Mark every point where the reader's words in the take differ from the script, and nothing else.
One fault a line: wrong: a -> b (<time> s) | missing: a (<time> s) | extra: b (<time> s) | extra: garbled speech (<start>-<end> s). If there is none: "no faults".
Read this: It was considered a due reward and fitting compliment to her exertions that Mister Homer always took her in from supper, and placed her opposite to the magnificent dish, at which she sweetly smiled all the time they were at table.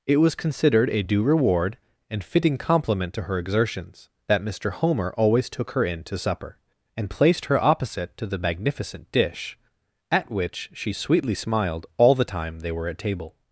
wrong: from -> to (6.0 s)